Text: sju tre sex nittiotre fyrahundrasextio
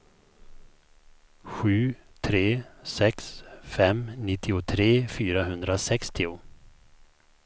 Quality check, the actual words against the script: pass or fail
fail